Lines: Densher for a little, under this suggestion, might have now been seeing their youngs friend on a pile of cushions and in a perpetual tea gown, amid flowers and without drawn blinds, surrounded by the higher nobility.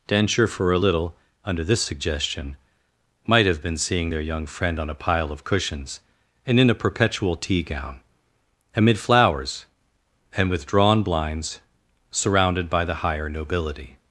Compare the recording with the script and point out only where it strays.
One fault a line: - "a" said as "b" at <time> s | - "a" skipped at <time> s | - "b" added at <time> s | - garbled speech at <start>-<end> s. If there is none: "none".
- "now" skipped at 3.6 s
- "youngs" said as "young" at 4.2 s
- "without" said as "with" at 10.5 s